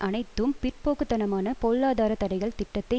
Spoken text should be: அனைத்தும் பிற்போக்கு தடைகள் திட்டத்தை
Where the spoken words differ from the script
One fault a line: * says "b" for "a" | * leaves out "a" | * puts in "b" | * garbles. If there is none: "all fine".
* puts in "தனமான பொருளாதார"